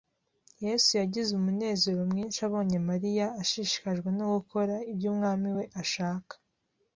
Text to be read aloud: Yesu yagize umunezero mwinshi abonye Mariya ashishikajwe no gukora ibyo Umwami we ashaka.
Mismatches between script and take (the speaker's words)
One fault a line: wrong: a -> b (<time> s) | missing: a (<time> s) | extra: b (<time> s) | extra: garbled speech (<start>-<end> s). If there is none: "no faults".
no faults